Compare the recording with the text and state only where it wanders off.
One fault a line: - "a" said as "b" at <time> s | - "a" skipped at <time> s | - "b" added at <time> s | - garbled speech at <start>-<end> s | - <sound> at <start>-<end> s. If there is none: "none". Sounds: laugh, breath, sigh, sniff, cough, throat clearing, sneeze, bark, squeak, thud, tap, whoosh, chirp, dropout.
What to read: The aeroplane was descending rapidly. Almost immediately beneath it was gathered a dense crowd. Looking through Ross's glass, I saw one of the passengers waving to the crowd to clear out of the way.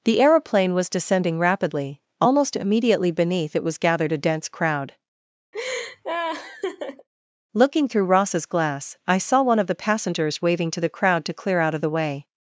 - laugh at 5.5-7.1 s